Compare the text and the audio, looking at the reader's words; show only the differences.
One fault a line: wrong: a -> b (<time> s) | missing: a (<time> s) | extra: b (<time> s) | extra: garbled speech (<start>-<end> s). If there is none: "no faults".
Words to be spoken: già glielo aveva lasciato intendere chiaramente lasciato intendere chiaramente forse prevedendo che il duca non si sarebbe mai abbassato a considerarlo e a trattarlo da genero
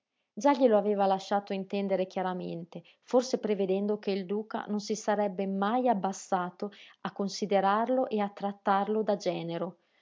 missing: lasciato intendere chiaramente (2.8 s)